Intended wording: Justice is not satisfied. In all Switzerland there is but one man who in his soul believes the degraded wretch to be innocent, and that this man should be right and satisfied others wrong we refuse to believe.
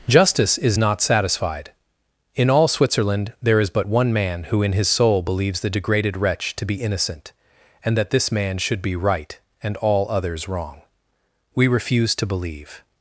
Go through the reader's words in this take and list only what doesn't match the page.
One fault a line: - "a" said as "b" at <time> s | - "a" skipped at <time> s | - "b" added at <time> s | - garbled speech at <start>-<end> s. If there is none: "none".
- "satisfied" said as "all" at 9.8 s